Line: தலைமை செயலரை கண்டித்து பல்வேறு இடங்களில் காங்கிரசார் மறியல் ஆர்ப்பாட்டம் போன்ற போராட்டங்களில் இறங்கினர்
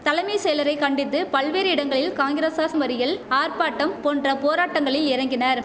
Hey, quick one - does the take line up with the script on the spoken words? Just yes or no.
yes